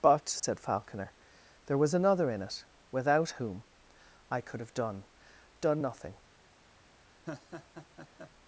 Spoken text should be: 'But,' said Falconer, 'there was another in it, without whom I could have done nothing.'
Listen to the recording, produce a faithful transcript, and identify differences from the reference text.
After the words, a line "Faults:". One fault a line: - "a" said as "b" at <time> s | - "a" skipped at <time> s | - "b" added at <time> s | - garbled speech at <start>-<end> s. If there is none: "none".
'But,' said Falconer, 'there was another in it, without whom I could have done done nothing.'
Faults:
- "done" added at 5.6 s